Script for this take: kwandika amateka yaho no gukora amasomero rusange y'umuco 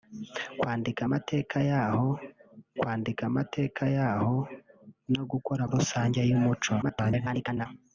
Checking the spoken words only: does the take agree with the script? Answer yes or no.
no